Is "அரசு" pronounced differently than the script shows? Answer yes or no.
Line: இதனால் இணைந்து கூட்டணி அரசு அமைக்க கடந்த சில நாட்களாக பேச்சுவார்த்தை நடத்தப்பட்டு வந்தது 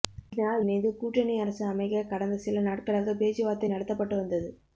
no